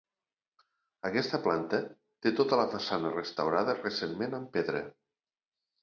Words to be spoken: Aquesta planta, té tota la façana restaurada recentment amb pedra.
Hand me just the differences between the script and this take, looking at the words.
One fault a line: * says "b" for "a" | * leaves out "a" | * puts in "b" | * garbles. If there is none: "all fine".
all fine